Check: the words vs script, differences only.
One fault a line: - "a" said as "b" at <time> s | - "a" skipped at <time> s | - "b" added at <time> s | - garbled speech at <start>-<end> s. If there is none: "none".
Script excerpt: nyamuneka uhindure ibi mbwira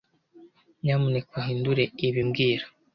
none